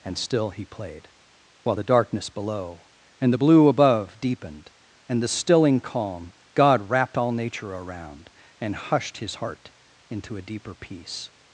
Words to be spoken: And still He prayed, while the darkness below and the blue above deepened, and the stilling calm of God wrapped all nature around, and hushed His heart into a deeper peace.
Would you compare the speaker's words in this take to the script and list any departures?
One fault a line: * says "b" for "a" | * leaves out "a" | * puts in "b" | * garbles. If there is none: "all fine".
* says "played" for "prayed"
* leaves out "of"